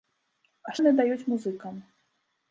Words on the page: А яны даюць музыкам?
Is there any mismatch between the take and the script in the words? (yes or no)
no